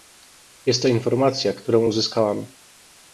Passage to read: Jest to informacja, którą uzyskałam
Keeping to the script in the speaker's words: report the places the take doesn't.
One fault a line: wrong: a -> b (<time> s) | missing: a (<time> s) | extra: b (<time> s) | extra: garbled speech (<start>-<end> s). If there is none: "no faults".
no faults